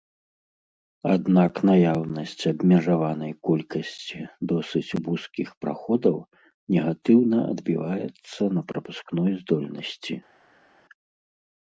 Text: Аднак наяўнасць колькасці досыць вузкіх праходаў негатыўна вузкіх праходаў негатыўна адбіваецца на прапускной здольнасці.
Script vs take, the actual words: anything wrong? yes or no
yes